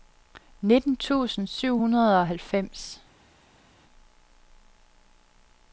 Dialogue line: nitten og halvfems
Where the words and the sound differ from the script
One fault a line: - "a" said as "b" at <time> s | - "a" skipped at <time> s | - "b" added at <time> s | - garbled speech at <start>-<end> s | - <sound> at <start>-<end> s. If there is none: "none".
- "tusind syv hundrede" added at 1.0 s